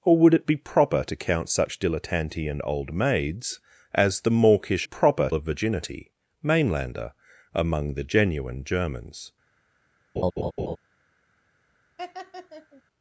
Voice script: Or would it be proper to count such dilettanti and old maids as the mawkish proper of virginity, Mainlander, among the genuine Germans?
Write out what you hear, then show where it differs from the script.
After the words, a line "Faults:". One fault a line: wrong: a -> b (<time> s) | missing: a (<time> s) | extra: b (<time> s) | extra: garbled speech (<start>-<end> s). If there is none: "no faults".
Or would it be proper to count such dilettanti and old maids as the mawkish proper of virginity, Mainlander, among the genuine Germans?
Faults:
no faults